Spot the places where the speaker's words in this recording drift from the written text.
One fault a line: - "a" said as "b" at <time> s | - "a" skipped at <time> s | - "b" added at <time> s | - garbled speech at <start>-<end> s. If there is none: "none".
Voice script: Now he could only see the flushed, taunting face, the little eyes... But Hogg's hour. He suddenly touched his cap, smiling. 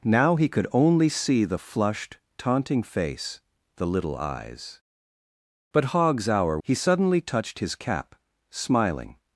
none